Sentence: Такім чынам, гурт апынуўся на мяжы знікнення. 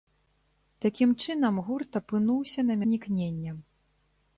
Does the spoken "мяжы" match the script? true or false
false